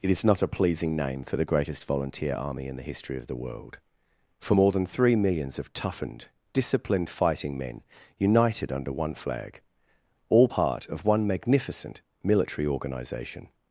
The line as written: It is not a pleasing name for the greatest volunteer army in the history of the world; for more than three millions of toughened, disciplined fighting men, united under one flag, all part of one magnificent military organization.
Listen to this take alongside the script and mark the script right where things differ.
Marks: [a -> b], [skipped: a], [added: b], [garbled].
It is not a pleasing name for the greatest volunteer army in the history of the world; for more than three millions of toughened, disciplined fighting men, united under one flag, all part of one magnificent military organization.